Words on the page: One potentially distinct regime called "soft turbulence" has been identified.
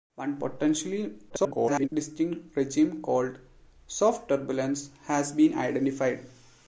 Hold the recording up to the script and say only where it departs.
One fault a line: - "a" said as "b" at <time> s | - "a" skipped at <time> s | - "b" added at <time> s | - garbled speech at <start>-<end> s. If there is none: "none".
- garbled speech at 1.3-1.9 s